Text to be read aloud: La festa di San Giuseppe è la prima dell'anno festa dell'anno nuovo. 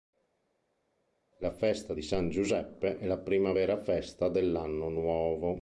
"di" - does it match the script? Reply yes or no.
yes